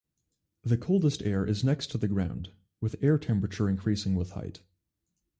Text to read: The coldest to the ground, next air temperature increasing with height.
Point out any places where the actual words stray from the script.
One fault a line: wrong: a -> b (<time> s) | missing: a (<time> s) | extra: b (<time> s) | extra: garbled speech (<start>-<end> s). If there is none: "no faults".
extra: air is next (1.2 s)
wrong: next -> with (2.8 s)